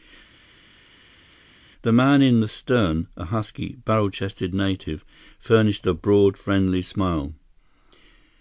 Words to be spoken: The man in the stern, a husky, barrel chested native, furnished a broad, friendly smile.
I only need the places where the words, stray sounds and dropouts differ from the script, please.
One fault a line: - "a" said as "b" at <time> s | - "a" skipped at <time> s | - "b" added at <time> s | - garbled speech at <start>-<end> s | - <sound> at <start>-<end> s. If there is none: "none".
none